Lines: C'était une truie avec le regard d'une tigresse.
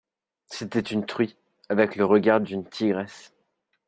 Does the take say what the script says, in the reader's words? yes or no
yes